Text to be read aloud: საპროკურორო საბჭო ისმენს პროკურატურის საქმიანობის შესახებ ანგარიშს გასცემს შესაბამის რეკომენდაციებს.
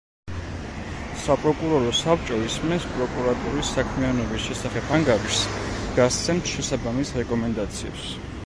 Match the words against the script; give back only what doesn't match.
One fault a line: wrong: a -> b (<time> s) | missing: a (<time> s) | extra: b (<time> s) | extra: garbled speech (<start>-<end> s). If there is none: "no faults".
no faults